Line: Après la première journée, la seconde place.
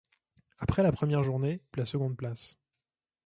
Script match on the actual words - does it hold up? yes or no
yes